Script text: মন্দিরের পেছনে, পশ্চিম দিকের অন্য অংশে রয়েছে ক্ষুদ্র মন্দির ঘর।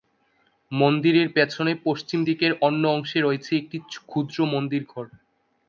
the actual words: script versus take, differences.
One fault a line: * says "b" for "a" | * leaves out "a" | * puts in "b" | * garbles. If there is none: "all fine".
* puts in "একটি"